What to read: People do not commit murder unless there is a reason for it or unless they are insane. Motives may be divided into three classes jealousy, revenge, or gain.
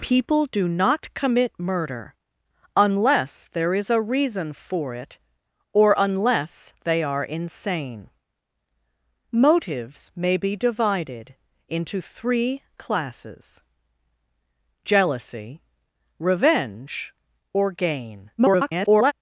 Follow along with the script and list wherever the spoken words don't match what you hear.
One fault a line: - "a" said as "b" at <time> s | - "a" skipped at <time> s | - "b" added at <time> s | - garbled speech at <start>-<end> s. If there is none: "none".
- garbled speech at 18.4-19.1 s